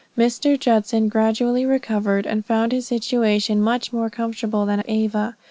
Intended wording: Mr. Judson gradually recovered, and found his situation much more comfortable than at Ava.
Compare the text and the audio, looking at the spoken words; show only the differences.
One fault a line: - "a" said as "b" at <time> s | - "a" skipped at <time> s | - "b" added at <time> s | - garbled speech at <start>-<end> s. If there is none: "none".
none